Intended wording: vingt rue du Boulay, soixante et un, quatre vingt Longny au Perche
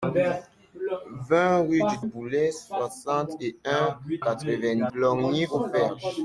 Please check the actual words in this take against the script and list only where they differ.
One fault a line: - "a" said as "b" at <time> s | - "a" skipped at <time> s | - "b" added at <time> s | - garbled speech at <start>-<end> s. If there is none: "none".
none